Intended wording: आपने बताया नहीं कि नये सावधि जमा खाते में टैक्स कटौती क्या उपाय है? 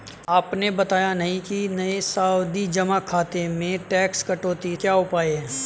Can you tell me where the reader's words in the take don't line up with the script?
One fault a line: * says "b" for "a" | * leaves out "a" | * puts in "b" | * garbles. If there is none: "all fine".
all fine